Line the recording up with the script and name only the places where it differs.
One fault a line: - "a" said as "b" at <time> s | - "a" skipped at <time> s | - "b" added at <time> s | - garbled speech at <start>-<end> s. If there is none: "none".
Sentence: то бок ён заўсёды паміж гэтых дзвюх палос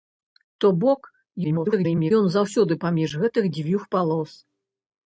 - garbled speech at 1.4-2.1 s